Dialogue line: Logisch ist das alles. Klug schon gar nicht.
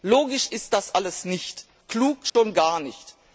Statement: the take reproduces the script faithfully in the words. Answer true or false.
false